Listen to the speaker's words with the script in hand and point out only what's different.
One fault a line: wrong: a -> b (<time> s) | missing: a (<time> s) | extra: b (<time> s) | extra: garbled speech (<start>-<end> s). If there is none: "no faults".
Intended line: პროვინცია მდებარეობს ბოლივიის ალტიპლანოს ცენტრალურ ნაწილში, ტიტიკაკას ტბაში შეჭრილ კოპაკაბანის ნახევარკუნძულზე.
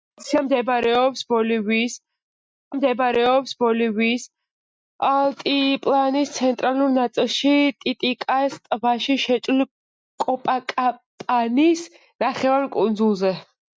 extra: მდებარეობს ბოლივიის (2.8 s)